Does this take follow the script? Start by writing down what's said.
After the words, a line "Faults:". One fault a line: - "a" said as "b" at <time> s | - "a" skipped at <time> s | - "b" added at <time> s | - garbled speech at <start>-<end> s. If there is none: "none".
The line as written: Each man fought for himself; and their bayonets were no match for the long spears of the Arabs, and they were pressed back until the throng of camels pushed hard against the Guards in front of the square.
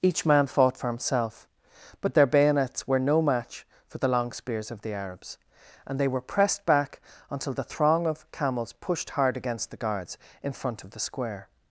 Each man fought for himself; but their bayonets were no match for the long spears of the Arabs, and they were pressed back until the throng of camels pushed hard against the Guards in front of the square.
Faults:
- "and" said as "but" at 2.0 s